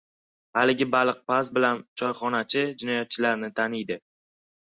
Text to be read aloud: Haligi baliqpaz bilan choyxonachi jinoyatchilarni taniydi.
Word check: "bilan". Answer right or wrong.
right